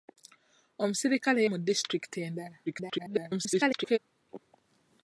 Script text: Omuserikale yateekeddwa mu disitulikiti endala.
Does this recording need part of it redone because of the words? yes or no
yes